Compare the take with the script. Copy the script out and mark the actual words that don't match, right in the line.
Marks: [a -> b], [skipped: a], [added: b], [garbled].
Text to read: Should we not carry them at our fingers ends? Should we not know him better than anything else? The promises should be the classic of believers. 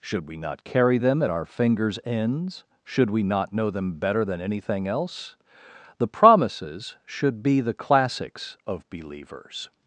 Should we not carry them at our fingers ends? Should we not know [him -> them] better than anything else? The promises should be the [classic -> classics] of believers.